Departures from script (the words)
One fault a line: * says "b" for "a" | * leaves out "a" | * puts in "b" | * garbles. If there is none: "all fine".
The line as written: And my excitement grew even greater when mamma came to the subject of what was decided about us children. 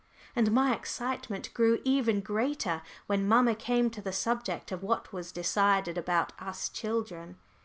all fine